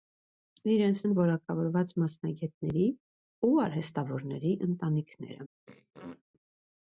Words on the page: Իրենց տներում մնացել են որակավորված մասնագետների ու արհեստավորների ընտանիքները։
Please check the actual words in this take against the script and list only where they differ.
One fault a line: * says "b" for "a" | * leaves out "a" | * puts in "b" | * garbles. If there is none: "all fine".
* leaves out "տներում մնացել"